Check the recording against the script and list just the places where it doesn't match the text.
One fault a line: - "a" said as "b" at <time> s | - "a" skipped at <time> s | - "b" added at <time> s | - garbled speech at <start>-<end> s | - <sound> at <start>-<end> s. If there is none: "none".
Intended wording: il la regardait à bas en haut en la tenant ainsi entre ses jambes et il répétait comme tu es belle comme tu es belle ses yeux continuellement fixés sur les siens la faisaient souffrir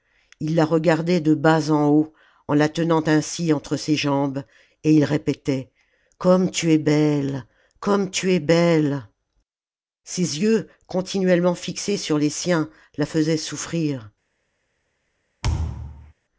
- "à" said as "de" at 1.2 s
- thud at 15.4-16.1 s